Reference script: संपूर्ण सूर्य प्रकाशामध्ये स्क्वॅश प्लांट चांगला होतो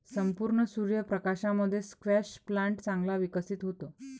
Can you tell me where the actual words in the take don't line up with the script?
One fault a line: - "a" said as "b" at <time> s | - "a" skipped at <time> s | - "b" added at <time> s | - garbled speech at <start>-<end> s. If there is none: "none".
- "विकसित" added at 3.2 s